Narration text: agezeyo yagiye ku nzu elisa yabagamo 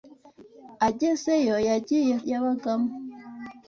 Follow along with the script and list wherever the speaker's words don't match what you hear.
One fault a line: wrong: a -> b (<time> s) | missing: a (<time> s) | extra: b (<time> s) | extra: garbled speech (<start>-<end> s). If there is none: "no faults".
missing: ku nzu elisa (2.1 s)